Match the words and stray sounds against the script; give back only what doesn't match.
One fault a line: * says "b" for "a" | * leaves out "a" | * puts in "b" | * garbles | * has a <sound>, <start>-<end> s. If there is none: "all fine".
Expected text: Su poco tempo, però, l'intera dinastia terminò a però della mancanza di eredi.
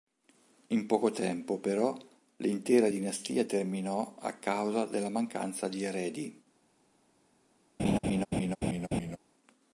* says "In" for "Su"
* says "causa" for "però"
* has a laugh, 7.8-9.2 s